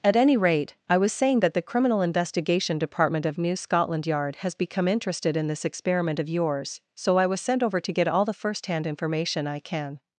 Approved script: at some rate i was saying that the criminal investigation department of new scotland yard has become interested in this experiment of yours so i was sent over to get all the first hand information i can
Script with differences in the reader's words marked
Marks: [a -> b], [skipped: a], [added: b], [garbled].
at [some -> any] rate i was saying that the criminal investigation department of new scotland yard has become interested in this experiment of yours so i was sent over to get all the first hand information i can